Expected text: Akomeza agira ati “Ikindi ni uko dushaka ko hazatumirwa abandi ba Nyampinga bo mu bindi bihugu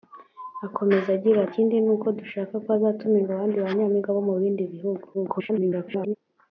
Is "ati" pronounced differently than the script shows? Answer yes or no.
yes